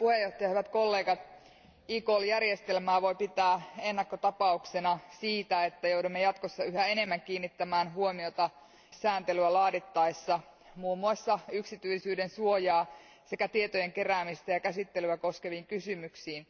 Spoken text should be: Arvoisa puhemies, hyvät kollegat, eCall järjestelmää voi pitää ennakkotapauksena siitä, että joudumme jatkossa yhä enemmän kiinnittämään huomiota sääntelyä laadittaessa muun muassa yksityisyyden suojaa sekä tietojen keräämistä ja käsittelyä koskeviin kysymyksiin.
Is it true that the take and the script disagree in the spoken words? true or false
false